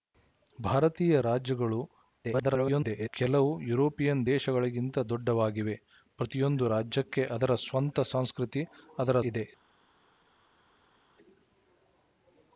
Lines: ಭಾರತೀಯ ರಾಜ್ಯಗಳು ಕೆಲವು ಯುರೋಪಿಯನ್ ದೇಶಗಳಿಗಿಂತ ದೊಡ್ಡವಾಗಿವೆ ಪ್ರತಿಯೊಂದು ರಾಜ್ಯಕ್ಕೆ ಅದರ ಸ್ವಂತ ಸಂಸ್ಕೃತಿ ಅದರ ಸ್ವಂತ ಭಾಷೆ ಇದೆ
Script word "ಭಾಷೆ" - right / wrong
wrong